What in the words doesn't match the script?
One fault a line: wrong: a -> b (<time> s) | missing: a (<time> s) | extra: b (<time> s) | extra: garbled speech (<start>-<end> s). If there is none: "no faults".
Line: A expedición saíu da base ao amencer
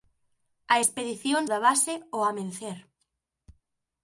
missing: saíu (1.4 s)